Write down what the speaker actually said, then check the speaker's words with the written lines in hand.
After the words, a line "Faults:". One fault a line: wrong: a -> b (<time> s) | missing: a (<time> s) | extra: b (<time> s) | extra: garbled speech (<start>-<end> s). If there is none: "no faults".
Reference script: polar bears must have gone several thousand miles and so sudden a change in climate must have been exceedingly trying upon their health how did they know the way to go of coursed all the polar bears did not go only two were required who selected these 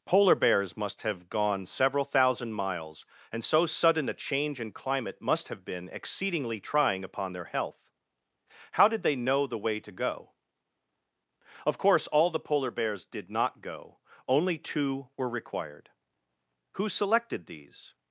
polar bears must have gone several thousand miles and so sudden a change in climate must have been exceedingly trying upon their health how did they know the way to go of course all the polar bears did not go only two were required who selected these
Faults:
wrong: coursed -> course (11.8 s)